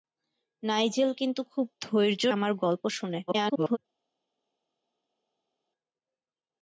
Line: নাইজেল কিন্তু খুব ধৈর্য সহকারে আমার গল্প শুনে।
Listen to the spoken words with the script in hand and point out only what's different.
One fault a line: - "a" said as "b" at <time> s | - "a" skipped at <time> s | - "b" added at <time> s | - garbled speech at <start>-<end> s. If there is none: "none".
- "সহকারে" skipped at 2.2 s
- garbled speech at 3.3-3.8 s